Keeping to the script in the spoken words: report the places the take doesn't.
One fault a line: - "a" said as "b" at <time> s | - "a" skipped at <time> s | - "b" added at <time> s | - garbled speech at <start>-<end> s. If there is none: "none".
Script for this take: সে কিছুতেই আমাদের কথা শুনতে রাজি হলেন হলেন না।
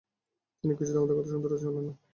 - "সে" said as "তিনি" at 0.6 s
- "হলেন" skipped at 1.9 s